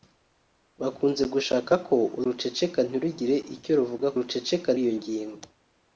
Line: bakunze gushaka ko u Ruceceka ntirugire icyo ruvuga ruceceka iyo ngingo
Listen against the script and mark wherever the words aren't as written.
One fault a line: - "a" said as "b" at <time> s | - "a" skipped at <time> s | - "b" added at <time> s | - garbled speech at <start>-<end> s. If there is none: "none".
none